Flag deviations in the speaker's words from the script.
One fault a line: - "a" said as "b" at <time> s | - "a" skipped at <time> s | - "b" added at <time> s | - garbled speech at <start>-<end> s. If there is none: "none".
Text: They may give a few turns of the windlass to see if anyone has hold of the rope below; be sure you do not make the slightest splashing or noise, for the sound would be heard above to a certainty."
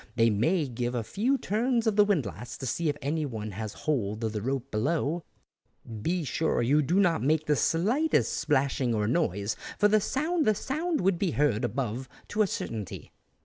- "the sound" added at 10.4 s